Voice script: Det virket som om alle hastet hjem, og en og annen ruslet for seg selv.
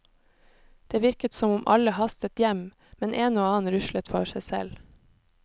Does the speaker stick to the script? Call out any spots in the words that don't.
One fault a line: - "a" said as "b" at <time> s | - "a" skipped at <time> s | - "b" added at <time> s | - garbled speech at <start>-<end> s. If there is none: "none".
- "og" said as "men" at 3.0 s